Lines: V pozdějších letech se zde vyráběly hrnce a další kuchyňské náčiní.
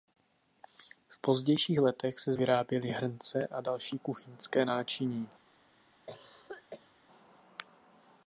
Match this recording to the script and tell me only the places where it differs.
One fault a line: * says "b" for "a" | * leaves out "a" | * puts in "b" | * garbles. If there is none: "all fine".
* leaves out "zde"